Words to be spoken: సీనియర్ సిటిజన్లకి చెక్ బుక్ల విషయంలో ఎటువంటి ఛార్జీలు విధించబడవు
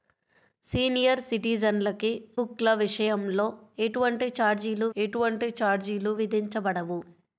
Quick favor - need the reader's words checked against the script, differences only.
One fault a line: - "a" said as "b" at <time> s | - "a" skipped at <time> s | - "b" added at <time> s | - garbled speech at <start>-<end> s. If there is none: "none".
- "చెక్" skipped at 2.1 s
- "ఎటువంటి ఛార్జీలు" added at 5.0 s